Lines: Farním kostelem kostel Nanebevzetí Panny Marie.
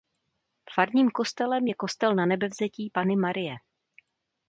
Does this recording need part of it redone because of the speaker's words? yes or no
yes